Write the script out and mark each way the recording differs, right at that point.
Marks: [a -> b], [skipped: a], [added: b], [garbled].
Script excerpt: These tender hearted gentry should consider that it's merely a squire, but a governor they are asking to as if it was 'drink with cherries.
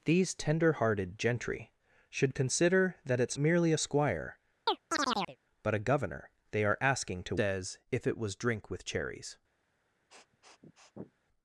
These tender hearted gentry should consider that it's merely a squire, but a governor they are asking to as if it was 'drink with cherries.